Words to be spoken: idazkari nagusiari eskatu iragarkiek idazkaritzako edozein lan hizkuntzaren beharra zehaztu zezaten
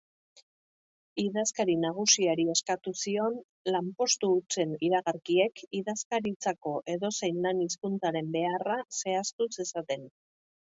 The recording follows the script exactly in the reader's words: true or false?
false